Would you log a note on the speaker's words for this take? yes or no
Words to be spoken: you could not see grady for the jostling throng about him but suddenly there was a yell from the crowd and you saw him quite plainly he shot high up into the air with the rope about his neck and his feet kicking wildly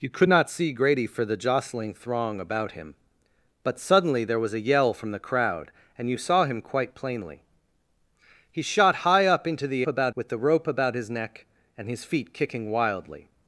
yes